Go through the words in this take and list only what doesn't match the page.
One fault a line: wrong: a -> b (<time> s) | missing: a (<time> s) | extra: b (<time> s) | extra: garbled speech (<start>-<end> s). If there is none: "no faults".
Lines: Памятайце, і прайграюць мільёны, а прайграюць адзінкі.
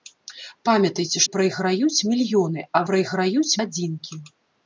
no faults